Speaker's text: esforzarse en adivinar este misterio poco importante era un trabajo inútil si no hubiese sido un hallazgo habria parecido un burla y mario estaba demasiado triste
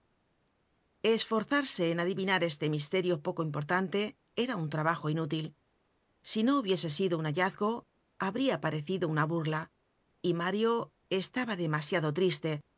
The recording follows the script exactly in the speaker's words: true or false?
false